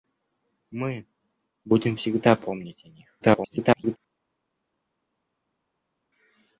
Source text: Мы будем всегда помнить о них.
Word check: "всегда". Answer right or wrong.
right